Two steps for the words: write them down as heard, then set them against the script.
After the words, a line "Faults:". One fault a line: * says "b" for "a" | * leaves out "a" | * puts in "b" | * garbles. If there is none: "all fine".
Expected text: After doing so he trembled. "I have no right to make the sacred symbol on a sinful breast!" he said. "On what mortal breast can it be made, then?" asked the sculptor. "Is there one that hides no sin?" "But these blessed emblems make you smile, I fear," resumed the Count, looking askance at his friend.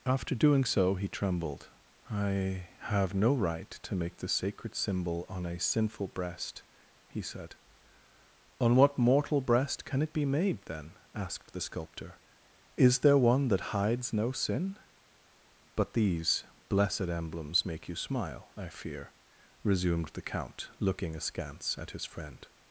After doing so he trembled. "I have no right to make the sacred symbol on a sinful breast!" he said. "On what mortal breast can it be made, then?" asked the sculptor. "Is there one that hides no sin?" "But these blessed emblems make you smile, I fear," resumed the Count, looking askance at his friend.
Faults:
all fine